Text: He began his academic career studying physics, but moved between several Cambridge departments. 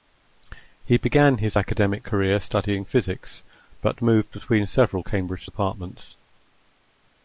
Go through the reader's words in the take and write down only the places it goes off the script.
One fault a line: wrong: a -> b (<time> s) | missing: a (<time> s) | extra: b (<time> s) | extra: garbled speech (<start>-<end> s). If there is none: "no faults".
no faults